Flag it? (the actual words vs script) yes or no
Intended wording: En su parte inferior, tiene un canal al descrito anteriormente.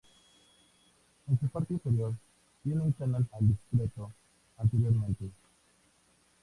no